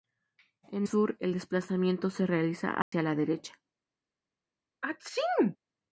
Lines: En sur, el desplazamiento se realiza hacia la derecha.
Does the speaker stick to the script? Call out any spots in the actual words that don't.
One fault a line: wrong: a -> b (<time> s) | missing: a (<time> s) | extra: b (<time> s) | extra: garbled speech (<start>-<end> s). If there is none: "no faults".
no faults